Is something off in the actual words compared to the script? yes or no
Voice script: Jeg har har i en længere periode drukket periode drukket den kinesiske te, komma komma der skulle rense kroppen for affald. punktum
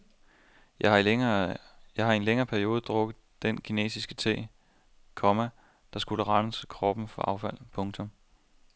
yes